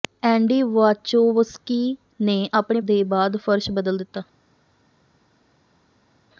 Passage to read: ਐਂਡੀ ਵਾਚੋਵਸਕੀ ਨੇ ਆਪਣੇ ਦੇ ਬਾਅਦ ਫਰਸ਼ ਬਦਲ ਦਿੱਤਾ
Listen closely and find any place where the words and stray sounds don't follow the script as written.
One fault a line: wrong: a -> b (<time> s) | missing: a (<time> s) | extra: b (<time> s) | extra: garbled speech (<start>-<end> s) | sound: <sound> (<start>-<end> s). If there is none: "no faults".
no faults